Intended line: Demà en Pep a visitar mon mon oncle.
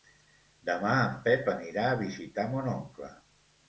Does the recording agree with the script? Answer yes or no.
no